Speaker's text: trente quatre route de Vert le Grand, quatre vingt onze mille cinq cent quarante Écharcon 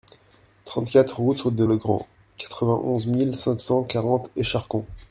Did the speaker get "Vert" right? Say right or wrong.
wrong